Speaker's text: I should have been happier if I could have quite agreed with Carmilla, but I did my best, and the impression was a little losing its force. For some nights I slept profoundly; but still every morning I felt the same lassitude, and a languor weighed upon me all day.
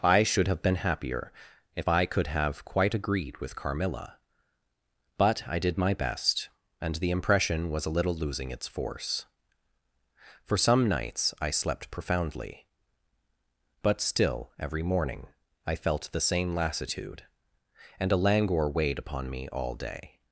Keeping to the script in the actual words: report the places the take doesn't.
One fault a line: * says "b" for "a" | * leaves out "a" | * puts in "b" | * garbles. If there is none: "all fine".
all fine